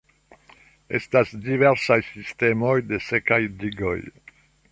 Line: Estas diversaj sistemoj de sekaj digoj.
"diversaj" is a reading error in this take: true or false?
false